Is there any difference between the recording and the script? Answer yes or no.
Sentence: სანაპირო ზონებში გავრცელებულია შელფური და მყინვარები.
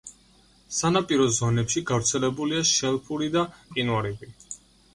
no